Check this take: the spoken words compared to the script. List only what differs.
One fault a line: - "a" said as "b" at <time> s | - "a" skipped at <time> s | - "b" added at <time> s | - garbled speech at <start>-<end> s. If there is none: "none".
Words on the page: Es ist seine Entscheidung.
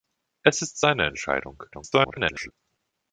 - garbled speech at 1.7-2.5 s